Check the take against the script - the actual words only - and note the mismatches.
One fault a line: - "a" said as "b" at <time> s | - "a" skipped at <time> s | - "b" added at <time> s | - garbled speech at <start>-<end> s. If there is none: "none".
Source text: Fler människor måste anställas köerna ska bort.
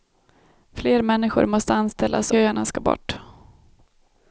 none